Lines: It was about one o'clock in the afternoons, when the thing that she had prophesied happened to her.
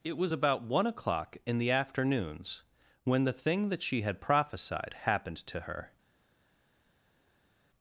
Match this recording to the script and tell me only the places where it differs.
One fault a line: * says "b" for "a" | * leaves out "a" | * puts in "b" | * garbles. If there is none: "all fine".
all fine